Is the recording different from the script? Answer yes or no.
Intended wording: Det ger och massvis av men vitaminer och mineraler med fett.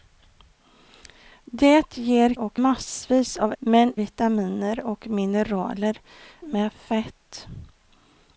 no